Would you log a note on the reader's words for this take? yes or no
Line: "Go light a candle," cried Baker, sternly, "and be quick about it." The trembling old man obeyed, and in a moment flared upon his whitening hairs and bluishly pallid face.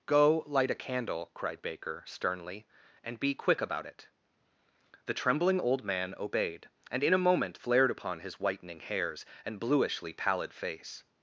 no